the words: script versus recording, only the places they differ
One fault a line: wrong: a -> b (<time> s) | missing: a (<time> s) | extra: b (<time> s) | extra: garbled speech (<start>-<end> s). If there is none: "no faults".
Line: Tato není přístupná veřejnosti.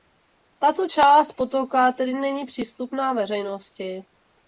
extra: část potoka tedy (0.8 s)